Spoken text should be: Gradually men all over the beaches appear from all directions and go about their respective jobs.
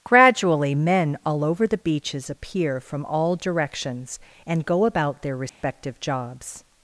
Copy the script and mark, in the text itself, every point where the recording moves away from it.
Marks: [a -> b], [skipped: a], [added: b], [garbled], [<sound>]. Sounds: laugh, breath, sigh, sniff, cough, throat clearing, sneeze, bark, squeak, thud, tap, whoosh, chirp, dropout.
Gradually men all over the beaches appear from all directions and go about their respective [dropout] jobs.